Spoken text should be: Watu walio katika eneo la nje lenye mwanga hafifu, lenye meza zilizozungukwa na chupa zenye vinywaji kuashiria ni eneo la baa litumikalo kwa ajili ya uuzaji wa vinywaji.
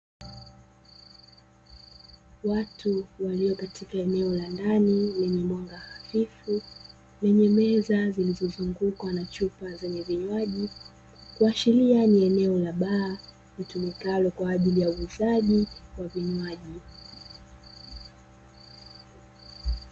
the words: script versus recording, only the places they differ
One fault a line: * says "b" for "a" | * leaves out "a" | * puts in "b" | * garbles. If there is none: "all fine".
* says "ndani" for "nje"